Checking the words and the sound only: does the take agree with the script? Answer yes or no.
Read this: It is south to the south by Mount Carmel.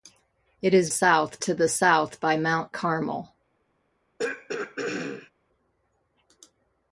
no